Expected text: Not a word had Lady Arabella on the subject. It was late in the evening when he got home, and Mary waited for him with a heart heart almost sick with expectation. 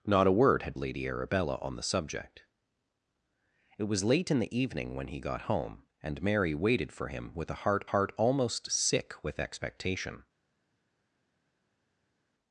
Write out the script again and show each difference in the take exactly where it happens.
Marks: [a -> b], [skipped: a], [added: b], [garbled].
Not a word had Lady Arabella on the subject. It was late in the evening when he got home, and Mary waited for him with a heart heart almost sick with expectation.